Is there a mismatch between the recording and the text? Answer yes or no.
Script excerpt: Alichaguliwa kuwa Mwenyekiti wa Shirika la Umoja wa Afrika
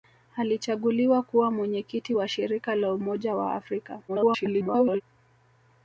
yes